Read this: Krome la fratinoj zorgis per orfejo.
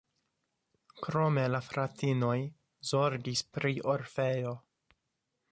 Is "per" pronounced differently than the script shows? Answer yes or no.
yes